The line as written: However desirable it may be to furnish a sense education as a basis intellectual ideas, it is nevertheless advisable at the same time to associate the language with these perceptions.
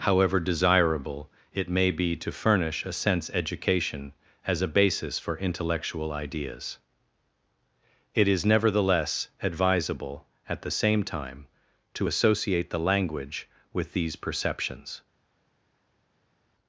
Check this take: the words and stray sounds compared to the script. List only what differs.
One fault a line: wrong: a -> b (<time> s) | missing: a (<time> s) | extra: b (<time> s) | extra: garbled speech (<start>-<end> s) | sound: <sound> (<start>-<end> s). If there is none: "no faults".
extra: for (5.2 s)